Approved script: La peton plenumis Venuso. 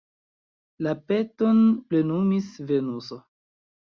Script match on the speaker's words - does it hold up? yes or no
yes